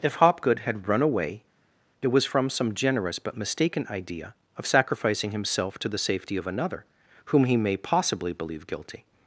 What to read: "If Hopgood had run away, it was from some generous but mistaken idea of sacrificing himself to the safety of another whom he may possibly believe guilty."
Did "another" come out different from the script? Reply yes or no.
no